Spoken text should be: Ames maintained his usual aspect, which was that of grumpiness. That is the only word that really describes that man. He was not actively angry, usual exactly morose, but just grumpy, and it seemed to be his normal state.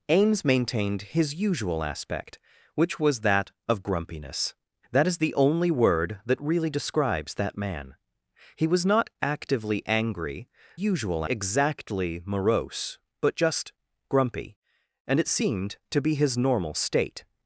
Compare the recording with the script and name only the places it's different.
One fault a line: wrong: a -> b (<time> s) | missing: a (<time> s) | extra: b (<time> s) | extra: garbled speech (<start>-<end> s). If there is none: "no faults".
no faults